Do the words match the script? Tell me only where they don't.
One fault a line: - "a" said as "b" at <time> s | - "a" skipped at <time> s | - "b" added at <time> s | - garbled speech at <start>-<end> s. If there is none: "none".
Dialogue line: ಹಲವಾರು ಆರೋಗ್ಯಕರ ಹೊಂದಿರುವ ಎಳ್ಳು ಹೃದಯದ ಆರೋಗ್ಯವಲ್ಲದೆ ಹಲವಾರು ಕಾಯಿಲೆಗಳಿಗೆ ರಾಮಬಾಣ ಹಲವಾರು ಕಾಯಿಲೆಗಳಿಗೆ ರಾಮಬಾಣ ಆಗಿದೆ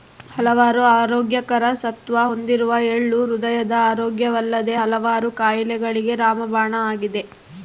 - "ಸತ್ವ" added at 1.8 s
- "ಹಲವಾರು ಕಾಯಿಲೆಗಳಿಗೆ ರಾಮಬಾಣ" skipped at 6.7 s